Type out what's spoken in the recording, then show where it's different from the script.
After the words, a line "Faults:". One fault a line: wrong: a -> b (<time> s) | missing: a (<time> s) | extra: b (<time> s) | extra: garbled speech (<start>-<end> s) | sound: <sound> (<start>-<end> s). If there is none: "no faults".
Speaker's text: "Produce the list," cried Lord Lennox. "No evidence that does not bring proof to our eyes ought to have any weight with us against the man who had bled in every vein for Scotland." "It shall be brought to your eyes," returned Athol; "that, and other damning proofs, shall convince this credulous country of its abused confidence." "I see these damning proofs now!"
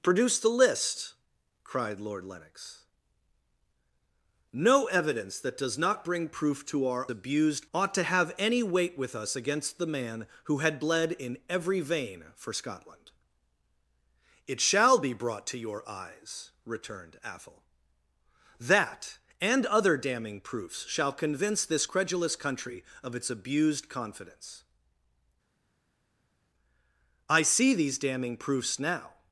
"Produce the list," cried Lord Lennox. "No evidence that does not bring proof to our abused ought to have any weight with us against the man who had bled in every vein for Scotland." "It shall be brought to your eyes," returned Athol; "that, and other damning proofs, shall convince this credulous country of its abused confidence." "I see these damning proofs now!"
Faults:
wrong: eyes -> abused (7.1 s)